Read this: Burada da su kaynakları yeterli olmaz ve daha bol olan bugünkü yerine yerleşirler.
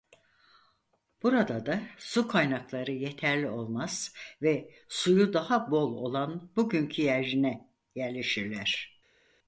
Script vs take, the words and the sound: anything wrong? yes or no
yes